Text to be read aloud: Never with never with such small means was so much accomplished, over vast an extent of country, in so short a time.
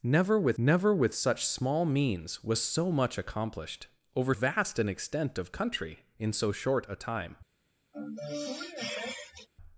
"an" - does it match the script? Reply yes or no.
yes